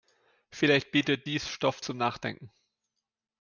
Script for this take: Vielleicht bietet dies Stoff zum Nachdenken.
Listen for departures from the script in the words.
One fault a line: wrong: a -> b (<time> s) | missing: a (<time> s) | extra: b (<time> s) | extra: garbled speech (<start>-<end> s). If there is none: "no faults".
no faults